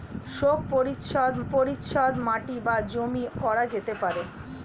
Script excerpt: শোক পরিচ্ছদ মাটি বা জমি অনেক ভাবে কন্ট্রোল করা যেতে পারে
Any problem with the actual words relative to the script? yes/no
yes